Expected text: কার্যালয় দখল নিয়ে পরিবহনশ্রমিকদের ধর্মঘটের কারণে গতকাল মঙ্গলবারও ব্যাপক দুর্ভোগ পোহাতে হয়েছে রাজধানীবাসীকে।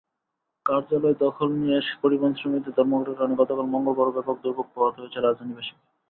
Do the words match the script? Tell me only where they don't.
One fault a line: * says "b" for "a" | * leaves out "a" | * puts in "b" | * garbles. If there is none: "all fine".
all fine